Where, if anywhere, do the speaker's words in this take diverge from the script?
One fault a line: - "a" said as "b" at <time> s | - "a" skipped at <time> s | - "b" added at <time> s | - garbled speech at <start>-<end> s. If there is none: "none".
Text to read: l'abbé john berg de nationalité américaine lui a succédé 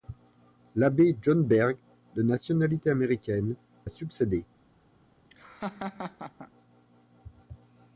- "lui" skipped at 3.5 s